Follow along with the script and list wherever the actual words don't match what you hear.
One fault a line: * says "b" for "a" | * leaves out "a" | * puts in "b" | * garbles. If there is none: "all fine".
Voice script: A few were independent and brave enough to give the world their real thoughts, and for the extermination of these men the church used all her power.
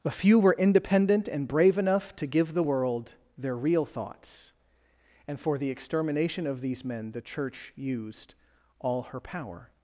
all fine